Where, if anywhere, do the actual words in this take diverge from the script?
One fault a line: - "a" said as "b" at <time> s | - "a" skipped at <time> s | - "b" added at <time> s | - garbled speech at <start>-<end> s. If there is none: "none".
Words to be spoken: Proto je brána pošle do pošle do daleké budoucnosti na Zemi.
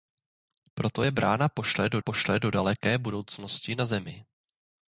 none